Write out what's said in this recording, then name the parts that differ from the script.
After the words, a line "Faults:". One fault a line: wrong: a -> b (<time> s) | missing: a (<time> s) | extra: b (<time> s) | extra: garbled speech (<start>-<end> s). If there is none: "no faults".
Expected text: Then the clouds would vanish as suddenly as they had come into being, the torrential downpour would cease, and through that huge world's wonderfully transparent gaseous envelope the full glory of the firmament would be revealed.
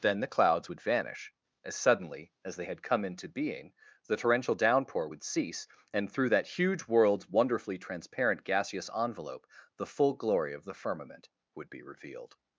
Then the clouds would vanish as suddenly as they had come into being, the torrential downpour would cease, and through that huge world's wonderfully transparent gaseous envelope the full glory of the firmament would be revealed.
Faults:
no faults